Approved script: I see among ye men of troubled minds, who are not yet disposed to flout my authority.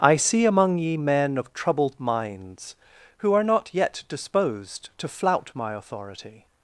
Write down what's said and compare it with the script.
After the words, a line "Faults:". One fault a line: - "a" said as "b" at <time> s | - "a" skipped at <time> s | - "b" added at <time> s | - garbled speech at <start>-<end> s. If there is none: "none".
I see among ye men of troubled minds, who are not yet disposed to flout my authority.
Faults:
none